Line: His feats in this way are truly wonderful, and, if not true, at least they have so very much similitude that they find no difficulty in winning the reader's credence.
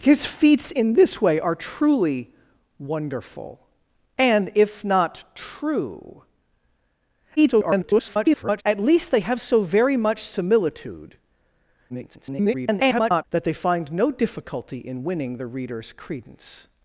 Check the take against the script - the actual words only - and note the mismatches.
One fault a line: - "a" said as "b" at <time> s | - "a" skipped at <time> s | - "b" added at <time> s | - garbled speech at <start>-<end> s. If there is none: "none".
- garbled speech at 7.4-8.6 s
- garbled speech at 11.9-13.2 s